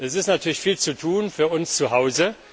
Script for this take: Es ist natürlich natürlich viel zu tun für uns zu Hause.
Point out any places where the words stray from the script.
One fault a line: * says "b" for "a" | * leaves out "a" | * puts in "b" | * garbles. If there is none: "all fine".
* leaves out "natürlich"